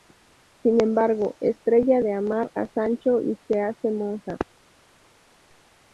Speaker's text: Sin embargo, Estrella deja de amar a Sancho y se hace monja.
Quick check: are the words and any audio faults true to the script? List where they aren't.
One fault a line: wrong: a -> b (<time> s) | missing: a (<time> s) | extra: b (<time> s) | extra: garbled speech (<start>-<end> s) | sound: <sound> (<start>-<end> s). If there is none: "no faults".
missing: deja (2.0 s)